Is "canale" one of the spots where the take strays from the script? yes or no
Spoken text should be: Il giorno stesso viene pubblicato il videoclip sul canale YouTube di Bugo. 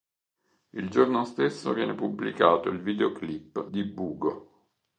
yes